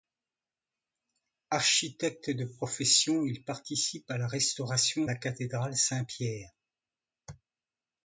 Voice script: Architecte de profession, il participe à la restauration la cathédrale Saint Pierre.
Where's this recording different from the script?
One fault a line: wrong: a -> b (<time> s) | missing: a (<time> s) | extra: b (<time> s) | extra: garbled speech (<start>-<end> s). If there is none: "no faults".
no faults